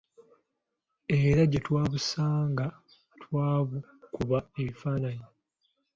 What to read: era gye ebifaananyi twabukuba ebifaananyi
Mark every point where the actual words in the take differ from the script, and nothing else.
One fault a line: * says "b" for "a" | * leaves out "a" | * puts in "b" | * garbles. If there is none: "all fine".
* says "twabusanga" for "ebifaananyi"